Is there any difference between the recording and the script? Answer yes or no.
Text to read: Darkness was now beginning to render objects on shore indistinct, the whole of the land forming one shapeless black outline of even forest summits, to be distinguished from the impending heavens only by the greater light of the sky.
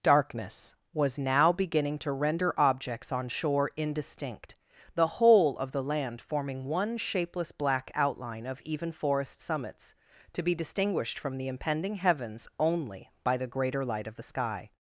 no